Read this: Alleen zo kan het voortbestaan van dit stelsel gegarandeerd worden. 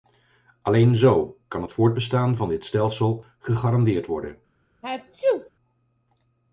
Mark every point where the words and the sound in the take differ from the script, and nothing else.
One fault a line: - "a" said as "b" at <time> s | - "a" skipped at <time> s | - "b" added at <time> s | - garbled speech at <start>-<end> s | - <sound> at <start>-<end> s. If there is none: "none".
- sneeze at 4.8-5.5 s